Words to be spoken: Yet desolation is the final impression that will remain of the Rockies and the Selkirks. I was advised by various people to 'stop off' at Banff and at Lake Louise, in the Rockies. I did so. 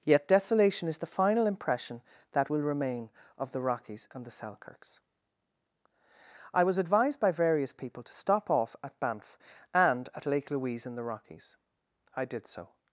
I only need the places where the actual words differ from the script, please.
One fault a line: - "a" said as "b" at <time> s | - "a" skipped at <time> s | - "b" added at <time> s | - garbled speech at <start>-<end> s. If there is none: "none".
none